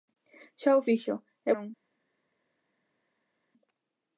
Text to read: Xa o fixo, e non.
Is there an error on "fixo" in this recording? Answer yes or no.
no